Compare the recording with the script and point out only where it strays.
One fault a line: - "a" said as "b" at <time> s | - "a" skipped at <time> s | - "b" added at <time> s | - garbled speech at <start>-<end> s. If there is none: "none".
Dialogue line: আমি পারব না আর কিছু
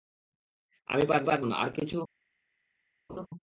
- "পারব" added at 1.2 s